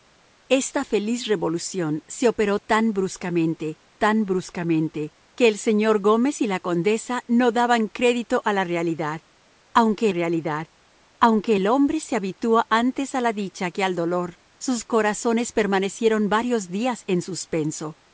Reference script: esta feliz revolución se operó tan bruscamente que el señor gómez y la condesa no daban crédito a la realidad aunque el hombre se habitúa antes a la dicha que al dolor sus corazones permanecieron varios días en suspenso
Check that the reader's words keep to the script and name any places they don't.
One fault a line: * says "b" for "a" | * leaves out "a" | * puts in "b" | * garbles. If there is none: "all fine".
* puts in "tan bruscamente"
* puts in "realidad aunque"